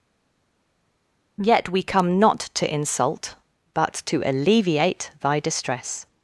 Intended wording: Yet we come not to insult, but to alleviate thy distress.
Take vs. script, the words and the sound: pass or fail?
pass